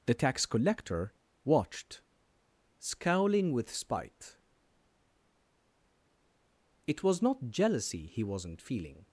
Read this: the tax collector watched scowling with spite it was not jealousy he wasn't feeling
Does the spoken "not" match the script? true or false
true